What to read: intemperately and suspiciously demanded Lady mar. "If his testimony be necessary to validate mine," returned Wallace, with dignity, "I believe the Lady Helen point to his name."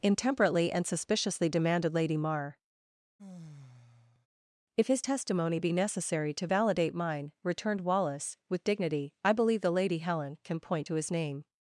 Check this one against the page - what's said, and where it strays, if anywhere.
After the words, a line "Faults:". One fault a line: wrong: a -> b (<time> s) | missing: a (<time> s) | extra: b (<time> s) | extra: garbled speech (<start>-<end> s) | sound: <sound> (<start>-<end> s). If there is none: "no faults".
intemperately and suspiciously demanded Lady mar. "If his testimony be necessary to validate mine," returned Wallace, with dignity, "I believe the Lady Helen can point to his name."
Faults:
sound: sigh (3.2-4.3 s)
extra: can (10.4 s)